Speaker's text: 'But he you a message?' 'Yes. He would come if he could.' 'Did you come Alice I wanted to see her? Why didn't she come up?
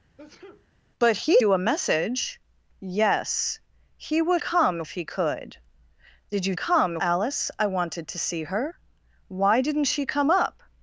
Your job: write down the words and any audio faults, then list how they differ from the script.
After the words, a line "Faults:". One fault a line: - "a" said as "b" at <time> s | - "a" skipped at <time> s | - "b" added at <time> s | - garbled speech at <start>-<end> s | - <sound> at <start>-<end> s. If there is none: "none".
'But he you a message?' 'Yes. He would come if he could.' 'Did you come Alice I wanted to see her? Why didn't she come up?
Faults:
- sneeze at 0.2-0.7 s